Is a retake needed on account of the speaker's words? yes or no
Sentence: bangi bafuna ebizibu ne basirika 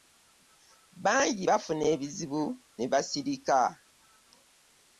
no